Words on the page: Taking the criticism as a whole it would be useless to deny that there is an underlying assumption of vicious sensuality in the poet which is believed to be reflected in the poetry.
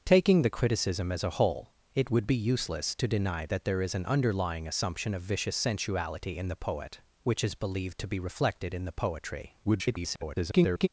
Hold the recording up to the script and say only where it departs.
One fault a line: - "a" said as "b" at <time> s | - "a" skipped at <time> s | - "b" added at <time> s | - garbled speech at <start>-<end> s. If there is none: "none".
- garbled speech at 9.6-10.9 s